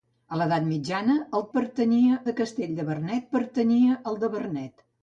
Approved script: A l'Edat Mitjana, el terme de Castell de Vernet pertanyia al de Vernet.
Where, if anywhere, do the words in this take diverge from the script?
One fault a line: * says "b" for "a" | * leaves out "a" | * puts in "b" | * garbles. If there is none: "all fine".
* says "pertanyia" for "terme"